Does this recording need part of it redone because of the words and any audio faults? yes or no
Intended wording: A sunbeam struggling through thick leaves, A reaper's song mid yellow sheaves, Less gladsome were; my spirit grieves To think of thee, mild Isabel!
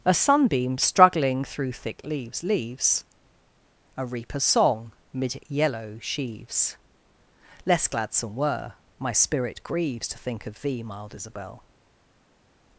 yes